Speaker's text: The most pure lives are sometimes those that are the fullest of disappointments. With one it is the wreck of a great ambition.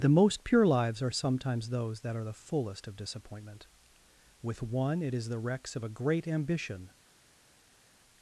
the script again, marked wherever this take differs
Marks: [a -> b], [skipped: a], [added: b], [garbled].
The most pure lives are sometimes those that are the fullest of [disappointments. -> disappointment] With one it is the [wreck -> wrecks] of a great ambition.